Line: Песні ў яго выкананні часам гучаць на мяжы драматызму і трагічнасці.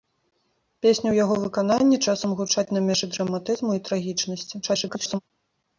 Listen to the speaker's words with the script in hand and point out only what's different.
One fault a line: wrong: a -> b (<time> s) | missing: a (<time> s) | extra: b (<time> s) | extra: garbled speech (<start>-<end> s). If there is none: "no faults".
extra: garbled speech (4.6-5.2 s)